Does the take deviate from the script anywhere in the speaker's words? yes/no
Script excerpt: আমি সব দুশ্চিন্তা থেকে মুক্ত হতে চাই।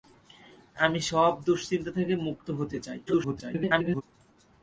yes